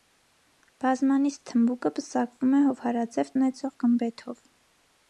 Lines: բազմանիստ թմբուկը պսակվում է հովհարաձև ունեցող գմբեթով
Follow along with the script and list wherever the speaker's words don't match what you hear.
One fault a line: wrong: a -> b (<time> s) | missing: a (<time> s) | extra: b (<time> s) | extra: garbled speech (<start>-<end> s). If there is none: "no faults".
no faults